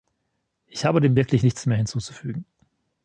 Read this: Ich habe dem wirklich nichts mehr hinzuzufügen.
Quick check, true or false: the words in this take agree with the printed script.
true